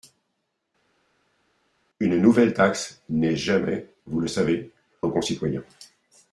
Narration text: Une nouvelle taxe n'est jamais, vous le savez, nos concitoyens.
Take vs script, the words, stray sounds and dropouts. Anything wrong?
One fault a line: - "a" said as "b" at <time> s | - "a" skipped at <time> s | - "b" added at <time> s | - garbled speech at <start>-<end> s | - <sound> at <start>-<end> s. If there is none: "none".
none